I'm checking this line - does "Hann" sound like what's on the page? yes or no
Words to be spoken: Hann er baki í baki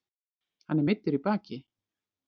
yes